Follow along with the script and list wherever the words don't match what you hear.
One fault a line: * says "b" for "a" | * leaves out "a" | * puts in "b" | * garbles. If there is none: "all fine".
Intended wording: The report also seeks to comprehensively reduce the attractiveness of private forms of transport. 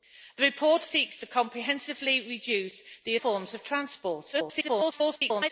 * leaves out "also"
* leaves out "attractiveness of private"
* garbles